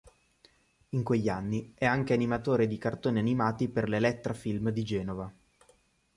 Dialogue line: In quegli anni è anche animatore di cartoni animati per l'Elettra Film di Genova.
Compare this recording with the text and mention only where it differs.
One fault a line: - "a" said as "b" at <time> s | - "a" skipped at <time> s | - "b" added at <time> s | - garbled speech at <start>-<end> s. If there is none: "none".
none